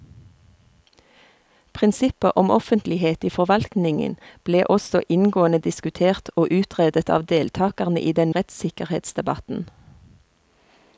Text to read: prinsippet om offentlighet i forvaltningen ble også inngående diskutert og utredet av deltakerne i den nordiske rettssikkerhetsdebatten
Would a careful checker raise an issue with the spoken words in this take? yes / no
yes